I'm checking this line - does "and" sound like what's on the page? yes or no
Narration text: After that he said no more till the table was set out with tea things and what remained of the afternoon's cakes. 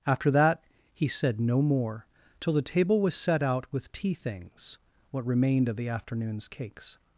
no